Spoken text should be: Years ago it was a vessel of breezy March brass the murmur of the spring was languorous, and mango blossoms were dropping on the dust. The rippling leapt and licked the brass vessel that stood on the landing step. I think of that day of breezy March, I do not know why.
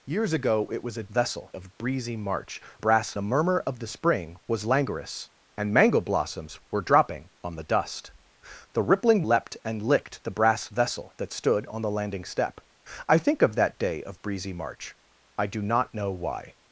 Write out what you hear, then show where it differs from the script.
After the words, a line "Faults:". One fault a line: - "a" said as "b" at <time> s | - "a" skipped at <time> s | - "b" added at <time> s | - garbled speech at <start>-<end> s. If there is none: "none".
Years ago it was a vessel of breezy March brass the murmur of the spring was languorous, and mango blossoms were dropping on the dust. The rippling leapt and licked the brass vessel that stood on the landing step. I think of that day of breezy March, I do not know why.
Faults:
none